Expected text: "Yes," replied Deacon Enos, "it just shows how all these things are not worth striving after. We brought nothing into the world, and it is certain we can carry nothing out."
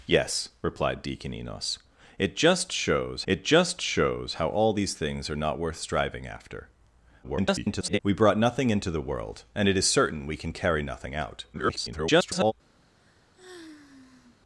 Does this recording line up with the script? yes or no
no